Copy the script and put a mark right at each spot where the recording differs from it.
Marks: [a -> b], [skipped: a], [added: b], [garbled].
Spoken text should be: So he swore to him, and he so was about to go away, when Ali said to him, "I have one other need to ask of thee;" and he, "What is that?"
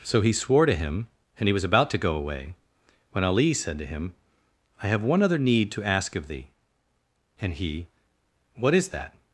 So he swore to him, and he [skipped: so] was about to go away, when Ali said to him, "I have one other need to ask of thee;" and he, "What is that?"